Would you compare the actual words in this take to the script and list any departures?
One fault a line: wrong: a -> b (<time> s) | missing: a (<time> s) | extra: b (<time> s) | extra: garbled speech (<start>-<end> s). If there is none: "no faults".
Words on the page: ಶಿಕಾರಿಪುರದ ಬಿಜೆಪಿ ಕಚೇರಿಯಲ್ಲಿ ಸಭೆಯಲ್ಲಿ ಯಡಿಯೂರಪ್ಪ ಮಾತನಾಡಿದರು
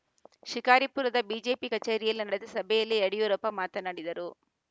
extra: ನಡೆದ (2.3 s)